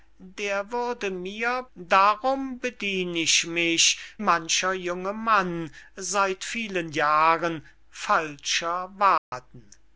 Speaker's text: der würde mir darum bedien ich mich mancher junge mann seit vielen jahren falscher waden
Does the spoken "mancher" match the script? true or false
true